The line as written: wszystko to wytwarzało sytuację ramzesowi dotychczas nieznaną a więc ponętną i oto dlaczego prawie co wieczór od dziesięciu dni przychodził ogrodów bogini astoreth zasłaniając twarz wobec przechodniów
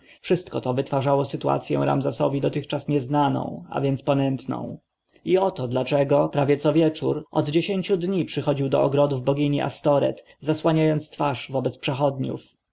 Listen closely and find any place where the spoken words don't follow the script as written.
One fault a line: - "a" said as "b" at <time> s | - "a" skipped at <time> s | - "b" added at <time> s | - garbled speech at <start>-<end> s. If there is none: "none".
- "do" added at 8.7 s